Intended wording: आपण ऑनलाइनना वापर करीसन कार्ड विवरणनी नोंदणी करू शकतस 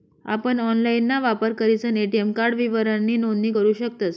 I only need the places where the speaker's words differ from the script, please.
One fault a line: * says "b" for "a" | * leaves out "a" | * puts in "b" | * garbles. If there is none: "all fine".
* puts in "ए.टी.एम"